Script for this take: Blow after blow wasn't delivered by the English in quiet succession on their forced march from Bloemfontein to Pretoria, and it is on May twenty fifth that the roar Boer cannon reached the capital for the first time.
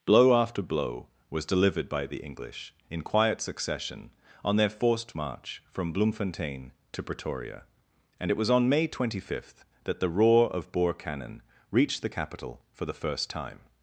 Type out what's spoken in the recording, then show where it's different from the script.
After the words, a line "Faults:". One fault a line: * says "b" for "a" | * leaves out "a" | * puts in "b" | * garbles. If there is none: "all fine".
Blow after blow was delivered by the English in quiet succession on their forced march from Bloemfontein to Pretoria, and it was on May twenty fifth that the roar of Boer cannon reached the capital for the first time.
Faults:
* says "was" for "wasn't"
* says "was" for "is"
* puts in "of"